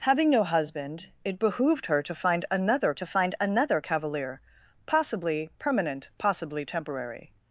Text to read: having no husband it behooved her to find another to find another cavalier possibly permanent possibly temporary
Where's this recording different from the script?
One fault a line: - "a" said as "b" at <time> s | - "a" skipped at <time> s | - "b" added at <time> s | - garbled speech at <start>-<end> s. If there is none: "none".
none